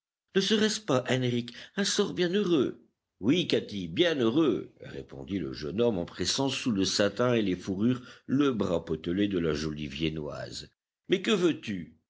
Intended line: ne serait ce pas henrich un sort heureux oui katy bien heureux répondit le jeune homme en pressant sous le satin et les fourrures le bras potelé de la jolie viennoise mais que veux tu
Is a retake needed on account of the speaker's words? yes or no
yes